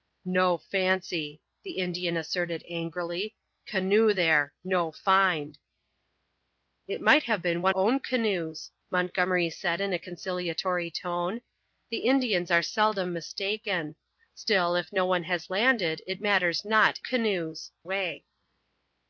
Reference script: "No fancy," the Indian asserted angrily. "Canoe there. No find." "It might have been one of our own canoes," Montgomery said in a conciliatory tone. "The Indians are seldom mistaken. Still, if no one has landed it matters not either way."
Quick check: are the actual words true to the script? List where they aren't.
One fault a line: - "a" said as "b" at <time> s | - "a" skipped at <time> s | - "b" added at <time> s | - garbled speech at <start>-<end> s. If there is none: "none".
- "of our" skipped at 7.7 s
- "either" said as "canoes" at 17.0 s